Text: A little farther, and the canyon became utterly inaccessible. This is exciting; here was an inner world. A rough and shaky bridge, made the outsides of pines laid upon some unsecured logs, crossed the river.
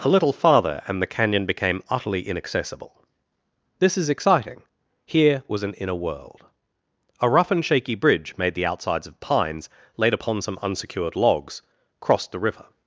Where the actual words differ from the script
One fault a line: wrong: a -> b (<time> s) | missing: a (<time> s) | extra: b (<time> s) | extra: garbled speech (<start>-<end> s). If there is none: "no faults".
no faults